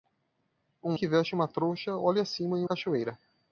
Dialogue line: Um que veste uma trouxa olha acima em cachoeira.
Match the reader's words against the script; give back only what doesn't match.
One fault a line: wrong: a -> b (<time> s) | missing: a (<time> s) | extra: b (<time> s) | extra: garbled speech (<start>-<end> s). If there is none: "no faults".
no faults